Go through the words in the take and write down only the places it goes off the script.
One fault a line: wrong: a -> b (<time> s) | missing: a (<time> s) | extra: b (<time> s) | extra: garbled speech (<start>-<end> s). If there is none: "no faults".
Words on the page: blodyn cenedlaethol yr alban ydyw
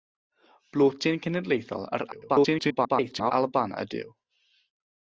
extra: garbled speech (2.1-3.3 s)